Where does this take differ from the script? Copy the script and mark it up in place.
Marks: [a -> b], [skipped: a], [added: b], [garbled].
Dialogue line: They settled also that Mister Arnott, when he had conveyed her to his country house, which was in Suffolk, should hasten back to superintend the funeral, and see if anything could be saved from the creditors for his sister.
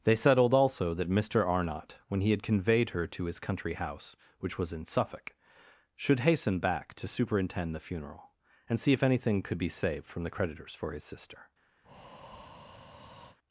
They settled also that Mister Arnott, when he had conveyed her to his country house, which was in Suffolk, should hasten back to superintend the funeral, and see if anything could be saved from the creditors for his sister.